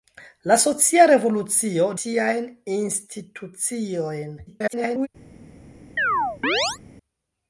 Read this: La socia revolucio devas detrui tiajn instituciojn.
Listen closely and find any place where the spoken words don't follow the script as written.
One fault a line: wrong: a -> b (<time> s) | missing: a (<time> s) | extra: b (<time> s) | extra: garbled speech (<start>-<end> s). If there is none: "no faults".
missing: devas detrui (1.9 s)
extra: garbled speech (4.5-5.1 s)